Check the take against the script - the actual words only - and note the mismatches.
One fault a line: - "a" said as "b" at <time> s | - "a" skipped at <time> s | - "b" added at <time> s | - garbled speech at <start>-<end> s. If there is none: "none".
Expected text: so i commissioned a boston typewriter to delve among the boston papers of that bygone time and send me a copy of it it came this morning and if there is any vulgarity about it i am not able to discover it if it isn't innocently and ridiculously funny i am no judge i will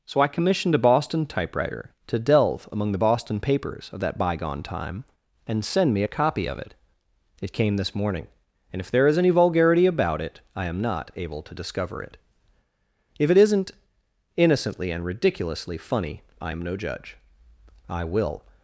none